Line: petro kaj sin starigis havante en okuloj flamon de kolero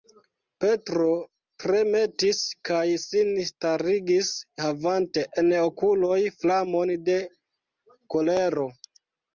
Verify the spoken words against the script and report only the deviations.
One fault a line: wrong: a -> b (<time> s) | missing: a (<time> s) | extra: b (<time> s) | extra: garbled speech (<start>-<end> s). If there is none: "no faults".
extra: tremetis (1.6 s)